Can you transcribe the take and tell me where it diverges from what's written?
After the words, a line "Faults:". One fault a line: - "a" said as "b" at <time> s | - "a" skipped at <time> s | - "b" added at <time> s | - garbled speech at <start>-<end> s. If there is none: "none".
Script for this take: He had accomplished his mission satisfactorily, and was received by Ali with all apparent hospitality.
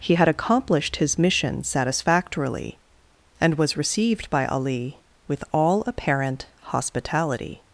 He had accomplished his mission satisfactorily, and was received by Ali with all apparent hospitality.
Faults:
none